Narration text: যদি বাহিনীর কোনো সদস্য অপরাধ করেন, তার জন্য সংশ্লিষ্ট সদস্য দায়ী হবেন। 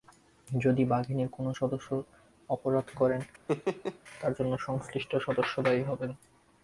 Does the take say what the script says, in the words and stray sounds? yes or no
no